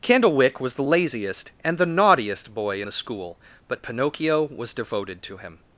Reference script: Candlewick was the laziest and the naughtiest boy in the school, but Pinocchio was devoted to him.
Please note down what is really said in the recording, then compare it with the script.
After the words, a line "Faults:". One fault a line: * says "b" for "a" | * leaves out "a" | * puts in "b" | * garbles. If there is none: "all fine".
Candlewick was the laziest and the naughtiest boy the school, but Pinocchio was devoted to him.
Faults:
* leaves out "in"